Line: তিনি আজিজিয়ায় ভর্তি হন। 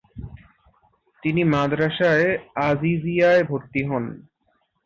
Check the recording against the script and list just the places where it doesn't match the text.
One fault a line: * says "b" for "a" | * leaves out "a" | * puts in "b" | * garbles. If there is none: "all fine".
* puts in "মাদ্রাসায়ে"